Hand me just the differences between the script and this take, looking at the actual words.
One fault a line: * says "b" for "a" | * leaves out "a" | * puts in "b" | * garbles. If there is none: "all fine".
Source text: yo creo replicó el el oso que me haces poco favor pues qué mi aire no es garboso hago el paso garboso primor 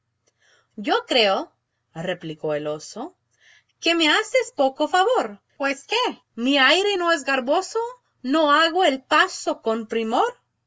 * leaves out "el"
* puts in "no"
* says "con" for "garboso"